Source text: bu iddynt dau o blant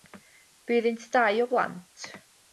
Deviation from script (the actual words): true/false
false